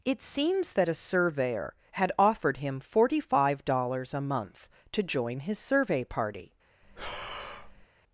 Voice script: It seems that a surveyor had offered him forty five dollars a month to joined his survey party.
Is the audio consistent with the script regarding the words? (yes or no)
no